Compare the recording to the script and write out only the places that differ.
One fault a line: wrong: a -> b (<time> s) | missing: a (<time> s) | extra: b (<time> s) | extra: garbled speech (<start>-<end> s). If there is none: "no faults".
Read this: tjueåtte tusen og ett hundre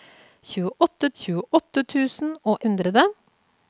extra: tjueåtte (1.2 s)
missing: ett (2.6 s)